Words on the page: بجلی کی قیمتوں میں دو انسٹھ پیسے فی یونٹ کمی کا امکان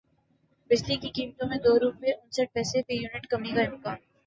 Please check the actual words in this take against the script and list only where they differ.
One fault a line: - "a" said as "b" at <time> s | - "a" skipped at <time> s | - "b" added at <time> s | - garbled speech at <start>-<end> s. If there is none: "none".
- "روپے" added at 1.8 s